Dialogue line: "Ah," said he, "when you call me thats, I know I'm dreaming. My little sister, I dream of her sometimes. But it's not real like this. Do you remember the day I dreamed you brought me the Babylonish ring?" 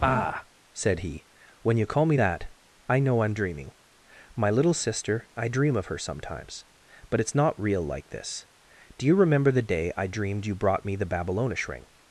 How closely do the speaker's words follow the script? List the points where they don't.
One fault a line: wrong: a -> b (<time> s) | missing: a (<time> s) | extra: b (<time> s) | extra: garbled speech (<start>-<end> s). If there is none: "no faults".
wrong: thats -> that (2.1 s)